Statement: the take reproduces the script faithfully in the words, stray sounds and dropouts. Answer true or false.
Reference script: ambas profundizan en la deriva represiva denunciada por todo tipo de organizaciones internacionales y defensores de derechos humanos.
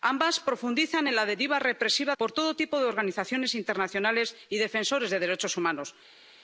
false